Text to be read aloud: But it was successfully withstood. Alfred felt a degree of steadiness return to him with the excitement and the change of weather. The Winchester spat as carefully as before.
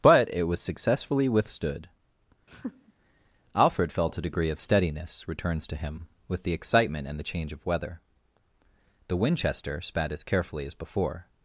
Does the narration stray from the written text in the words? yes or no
yes